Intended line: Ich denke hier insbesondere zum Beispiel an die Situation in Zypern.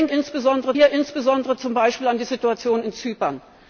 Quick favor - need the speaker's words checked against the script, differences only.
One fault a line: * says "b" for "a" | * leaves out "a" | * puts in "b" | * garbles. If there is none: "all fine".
* says "insbesondere" for "denke"